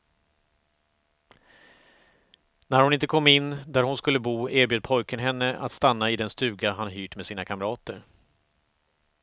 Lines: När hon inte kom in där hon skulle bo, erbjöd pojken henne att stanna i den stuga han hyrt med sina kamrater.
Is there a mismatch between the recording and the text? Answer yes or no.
no